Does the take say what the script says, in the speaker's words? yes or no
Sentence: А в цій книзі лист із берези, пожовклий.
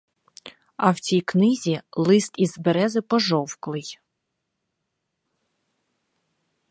yes